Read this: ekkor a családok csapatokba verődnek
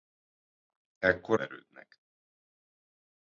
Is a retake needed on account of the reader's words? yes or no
yes